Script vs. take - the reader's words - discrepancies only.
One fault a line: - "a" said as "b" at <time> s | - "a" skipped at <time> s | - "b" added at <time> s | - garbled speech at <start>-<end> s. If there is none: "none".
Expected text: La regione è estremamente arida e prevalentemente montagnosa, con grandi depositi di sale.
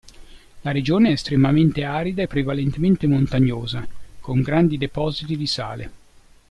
none